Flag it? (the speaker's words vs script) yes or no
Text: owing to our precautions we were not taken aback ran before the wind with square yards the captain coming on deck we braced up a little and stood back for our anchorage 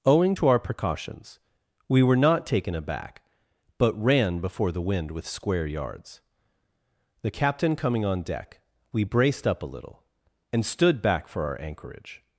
yes